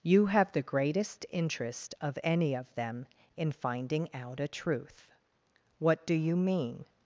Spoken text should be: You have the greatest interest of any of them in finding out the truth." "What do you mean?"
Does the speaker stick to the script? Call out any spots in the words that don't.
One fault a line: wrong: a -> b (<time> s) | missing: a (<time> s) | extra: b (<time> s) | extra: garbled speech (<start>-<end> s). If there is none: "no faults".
wrong: the -> a (4.4 s)